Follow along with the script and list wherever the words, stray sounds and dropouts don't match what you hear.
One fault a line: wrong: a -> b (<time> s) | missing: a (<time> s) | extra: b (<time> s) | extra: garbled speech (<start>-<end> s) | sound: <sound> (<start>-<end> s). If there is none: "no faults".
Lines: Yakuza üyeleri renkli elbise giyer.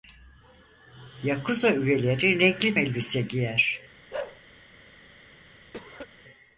sound: bark (4.1-4.4 s)
sound: cough (5.7-6.1 s)